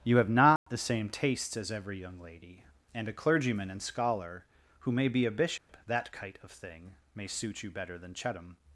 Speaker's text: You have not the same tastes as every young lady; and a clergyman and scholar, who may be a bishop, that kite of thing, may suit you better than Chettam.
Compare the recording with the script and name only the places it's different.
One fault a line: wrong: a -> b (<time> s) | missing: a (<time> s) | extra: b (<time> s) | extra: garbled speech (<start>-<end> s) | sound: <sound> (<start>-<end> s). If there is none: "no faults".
sound: dropout (0.6-0.7 s)
sound: dropout (5.6-5.7 s)